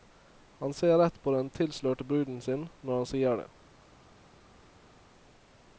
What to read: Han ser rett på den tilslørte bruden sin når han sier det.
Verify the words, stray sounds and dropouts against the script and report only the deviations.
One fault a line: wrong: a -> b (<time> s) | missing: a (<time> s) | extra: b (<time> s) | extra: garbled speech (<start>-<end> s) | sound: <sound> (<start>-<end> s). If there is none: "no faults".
no faults